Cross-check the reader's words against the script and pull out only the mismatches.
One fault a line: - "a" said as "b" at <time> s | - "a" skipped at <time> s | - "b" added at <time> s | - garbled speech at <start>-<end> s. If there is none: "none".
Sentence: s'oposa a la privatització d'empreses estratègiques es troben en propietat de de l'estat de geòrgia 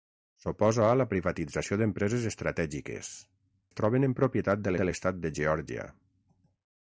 none